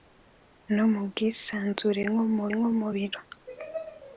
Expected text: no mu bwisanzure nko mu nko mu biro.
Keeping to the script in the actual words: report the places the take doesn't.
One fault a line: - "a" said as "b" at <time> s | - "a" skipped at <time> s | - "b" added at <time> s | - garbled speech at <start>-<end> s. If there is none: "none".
none